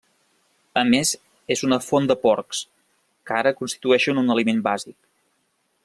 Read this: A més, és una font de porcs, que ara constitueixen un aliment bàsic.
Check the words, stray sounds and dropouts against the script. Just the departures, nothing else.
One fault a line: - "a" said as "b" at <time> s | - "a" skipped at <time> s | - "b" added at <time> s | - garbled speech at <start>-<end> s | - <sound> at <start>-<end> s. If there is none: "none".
none